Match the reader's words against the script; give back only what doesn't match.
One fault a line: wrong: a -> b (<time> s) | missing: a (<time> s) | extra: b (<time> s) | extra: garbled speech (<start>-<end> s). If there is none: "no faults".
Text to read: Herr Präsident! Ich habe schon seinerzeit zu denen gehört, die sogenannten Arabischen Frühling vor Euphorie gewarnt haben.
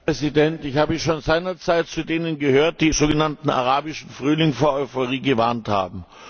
no faults